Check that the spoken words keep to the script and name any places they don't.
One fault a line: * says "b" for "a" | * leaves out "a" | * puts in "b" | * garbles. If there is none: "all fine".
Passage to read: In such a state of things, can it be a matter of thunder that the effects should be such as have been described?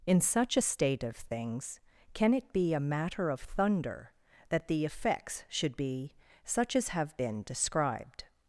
all fine